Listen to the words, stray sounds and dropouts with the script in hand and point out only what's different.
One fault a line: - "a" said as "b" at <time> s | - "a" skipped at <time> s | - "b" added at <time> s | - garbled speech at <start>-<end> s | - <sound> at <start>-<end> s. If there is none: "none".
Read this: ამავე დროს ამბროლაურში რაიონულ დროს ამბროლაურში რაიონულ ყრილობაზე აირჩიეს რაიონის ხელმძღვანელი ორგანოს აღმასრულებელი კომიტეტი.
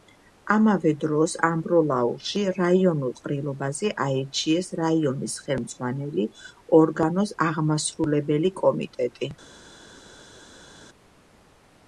- "დროს ამბროლაურში რაიონულ" skipped at 3.1 s